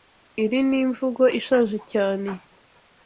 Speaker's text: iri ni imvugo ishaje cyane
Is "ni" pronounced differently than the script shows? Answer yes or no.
no